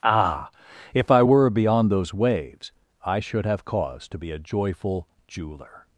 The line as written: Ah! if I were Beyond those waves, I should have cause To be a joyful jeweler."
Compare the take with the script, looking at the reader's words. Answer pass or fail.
pass